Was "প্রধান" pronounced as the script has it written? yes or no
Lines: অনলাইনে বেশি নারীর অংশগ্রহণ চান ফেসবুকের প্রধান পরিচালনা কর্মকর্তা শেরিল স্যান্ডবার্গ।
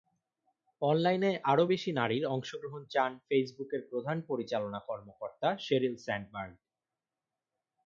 yes